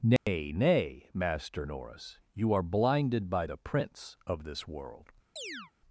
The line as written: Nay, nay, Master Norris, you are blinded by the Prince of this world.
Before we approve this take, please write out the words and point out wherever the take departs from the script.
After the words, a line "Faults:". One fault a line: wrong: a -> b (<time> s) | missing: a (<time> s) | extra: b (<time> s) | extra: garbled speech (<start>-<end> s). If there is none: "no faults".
Nay, nay, Master Norris, you are blinded by the Prince of this world.
Faults:
no faults